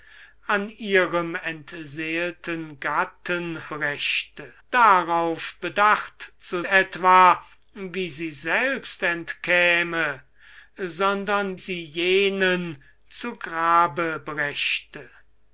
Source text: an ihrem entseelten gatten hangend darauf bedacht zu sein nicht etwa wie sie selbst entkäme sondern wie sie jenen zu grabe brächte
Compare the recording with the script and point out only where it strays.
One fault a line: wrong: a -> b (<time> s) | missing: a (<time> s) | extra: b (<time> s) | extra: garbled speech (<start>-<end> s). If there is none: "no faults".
wrong: hangend -> brächte (3.7 s)
missing: sein nicht (6.6 s)
missing: wie (11.6 s)